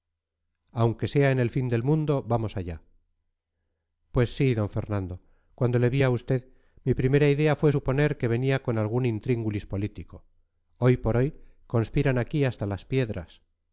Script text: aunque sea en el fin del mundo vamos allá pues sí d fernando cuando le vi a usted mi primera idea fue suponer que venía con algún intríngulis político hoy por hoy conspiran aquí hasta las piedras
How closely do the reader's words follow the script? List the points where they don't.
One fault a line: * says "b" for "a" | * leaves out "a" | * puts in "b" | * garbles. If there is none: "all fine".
all fine